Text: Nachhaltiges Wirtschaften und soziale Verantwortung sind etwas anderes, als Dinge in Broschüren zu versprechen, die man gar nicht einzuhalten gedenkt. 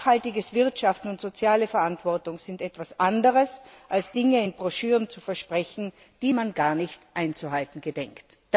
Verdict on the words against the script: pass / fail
pass